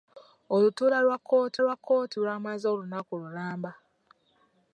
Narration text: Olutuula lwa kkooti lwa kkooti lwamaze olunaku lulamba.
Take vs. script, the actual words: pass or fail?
pass